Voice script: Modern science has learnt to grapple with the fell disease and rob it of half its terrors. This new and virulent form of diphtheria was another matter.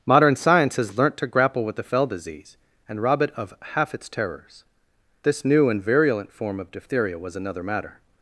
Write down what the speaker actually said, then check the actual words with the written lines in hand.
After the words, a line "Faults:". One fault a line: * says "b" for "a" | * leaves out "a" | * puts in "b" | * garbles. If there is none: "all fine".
Modern science has learnt to grapple with the fell disease and rob it of half its terrors. This new and virulent form of diphtheria was another matter.
Faults:
all fine